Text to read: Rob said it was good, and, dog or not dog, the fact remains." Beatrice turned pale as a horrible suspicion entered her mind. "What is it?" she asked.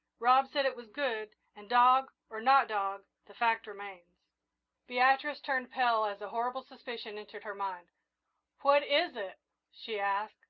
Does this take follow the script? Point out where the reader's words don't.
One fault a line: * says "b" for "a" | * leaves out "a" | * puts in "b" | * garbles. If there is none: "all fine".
all fine